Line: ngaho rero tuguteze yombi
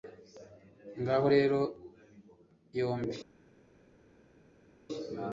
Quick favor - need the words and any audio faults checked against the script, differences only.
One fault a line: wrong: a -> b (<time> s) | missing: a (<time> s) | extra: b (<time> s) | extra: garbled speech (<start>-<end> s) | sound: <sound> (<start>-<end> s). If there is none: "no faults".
missing: tuguteze (1.6 s)